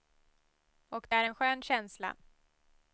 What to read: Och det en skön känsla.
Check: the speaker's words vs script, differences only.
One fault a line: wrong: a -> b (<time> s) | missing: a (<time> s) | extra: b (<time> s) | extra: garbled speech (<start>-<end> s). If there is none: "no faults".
extra: är (1.1 s)